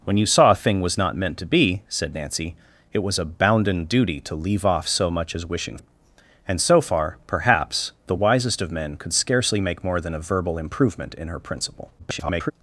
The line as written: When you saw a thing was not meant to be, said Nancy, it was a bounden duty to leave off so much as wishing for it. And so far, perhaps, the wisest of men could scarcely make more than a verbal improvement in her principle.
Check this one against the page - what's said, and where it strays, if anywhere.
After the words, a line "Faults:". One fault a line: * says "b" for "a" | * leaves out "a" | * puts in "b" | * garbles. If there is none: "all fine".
When you saw a thing was not meant to be, said Nancy, it was a bounden duty to leave off so much as wishing it. And so far, perhaps, the wisest of men could scarcely make more than a verbal improvement in her principle. [garbled]
Faults:
* leaves out "for"
* garbles